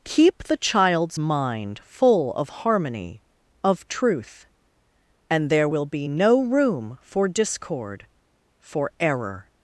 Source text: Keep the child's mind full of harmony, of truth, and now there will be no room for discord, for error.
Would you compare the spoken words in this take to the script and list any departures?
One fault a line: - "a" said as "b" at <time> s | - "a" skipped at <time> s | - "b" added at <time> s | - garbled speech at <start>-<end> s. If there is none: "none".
- "now" skipped at 5.5 s